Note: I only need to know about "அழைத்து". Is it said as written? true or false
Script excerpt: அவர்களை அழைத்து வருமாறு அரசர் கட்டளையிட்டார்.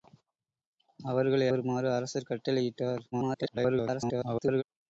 false